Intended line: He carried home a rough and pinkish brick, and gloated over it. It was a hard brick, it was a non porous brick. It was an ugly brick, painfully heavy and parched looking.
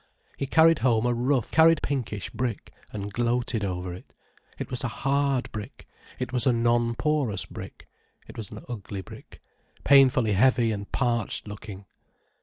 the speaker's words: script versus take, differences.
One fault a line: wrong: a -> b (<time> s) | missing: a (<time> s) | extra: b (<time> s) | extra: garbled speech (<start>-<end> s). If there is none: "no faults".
wrong: and -> carried (1.5 s)